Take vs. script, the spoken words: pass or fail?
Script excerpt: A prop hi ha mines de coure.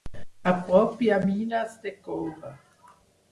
pass